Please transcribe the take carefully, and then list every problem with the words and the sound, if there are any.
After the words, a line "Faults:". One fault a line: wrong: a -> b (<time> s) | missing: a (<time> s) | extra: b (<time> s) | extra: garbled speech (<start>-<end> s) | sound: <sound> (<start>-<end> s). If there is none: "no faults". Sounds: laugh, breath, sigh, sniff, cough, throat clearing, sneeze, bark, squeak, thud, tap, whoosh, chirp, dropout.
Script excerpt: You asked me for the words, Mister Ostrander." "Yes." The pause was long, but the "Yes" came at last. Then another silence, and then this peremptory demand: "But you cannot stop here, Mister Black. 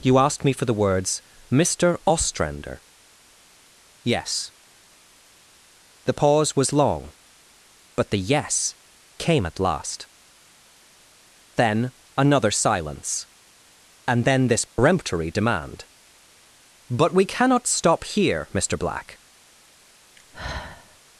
You asked me for the words, Mister Ostrander." "Yes." The pause was long, but the "Yes" came at last. Then another silence, and then this peremptory demand: "But we cannot stop here, Mister Black.
Faults:
sound: dropout (14.7-14.8 s)
wrong: you -> we (17.1 s)
sound: sigh (20.2-21.0 s)